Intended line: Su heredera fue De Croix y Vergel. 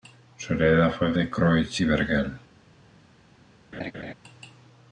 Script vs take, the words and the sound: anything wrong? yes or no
yes